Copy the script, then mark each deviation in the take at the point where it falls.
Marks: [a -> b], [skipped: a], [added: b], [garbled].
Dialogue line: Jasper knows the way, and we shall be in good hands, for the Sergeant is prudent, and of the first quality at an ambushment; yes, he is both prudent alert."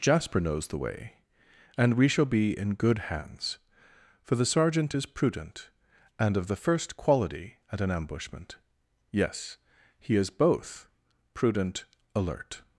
Jasper knows the way, and we shall be in good hands, for the Sergeant is prudent, and of the first quality at an ambushment; yes, he is both prudent alert."